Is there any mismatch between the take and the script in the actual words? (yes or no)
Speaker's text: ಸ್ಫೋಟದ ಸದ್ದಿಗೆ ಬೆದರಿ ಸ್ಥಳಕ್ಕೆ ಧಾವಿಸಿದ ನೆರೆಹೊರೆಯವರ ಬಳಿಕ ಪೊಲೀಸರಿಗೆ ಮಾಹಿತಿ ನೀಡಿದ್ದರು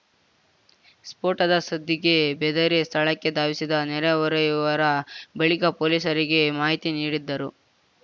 no